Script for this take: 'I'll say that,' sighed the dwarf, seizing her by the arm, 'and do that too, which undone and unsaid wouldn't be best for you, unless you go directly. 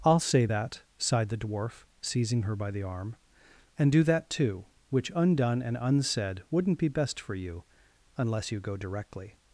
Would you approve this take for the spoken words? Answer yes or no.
yes